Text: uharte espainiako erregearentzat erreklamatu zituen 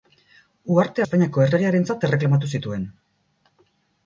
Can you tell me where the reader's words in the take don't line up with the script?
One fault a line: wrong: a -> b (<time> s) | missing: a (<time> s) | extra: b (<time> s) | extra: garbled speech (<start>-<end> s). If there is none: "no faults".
no faults